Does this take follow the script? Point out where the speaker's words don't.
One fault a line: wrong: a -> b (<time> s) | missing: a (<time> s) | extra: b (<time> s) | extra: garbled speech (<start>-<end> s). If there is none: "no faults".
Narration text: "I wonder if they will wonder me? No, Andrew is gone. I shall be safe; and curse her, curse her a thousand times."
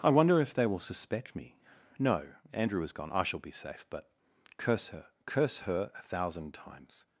wrong: wonder -> suspect (0.8 s)
wrong: and -> but (3.9 s)